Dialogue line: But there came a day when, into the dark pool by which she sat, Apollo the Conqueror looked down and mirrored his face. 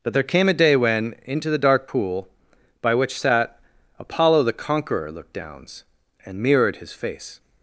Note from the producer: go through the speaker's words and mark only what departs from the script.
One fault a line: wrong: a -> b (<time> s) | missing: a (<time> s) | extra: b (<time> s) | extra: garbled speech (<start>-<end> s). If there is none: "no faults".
missing: she (3.2 s)
wrong: down -> downs (5.3 s)